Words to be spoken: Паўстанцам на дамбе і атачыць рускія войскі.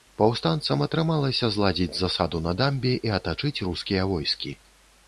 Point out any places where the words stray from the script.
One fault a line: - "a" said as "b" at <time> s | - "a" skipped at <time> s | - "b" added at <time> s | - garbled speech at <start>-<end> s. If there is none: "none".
- "атрымалася зладзіць засаду" added at 0.8 s